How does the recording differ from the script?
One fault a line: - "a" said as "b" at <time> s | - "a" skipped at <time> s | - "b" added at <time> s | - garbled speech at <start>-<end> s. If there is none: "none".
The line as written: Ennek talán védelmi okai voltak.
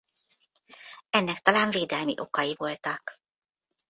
none